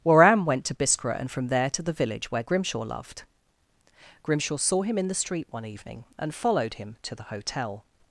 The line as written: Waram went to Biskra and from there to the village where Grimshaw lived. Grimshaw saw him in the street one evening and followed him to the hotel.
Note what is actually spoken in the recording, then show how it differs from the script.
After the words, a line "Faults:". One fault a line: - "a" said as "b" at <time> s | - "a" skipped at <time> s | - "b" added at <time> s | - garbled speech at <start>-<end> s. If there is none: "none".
Waram went to Biskra and from there to the village where Grimshaw loved. Grimshaw saw him in the street one evening and followed him to the hotel.
Faults:
- "lived" said as "loved" at 2.8 s